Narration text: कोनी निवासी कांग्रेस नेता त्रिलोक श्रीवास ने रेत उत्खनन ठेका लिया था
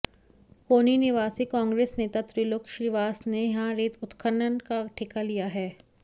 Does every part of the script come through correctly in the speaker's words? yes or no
no